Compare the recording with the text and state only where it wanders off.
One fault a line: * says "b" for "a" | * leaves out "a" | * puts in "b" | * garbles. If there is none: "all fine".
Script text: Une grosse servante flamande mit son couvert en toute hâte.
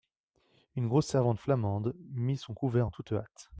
all fine